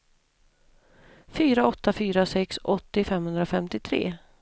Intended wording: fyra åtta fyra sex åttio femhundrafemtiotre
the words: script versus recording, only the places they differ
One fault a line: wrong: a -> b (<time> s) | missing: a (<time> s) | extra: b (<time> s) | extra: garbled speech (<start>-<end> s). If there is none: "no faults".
no faults